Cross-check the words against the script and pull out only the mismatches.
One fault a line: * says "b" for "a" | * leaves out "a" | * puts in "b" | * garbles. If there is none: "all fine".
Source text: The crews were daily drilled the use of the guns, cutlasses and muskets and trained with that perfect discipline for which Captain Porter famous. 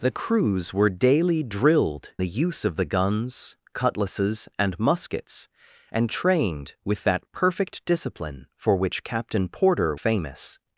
all fine